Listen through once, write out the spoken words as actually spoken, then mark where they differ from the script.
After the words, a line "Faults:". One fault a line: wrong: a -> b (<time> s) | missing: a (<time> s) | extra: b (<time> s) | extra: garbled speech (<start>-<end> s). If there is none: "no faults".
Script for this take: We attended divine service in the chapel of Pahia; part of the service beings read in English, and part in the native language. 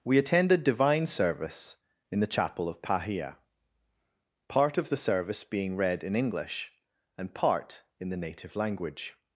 We attended divine service in the chapel of Pahia; part of the service being read in English, and part in the native language.
Faults:
wrong: beings -> being (5.4 s)